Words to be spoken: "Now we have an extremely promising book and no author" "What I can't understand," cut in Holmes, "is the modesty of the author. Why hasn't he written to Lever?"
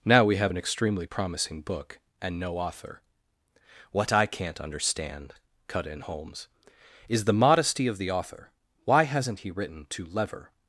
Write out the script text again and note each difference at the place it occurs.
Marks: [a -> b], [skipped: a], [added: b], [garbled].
"Now we have an extremely promising book and no author" "What I can't understand," cut in Holmes, "is the modesty of the author. Why hasn't he written to Lever?"